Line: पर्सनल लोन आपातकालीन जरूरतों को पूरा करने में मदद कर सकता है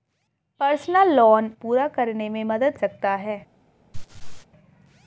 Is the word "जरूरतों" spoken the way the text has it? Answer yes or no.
no